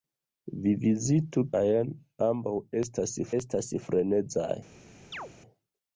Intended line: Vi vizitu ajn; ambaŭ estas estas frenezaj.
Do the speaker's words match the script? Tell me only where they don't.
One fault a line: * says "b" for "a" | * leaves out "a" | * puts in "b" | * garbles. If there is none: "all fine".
all fine